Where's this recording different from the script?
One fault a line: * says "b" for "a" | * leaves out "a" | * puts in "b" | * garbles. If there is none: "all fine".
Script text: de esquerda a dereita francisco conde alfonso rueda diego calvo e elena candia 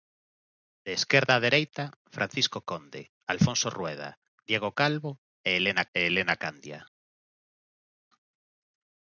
* puts in "e elena"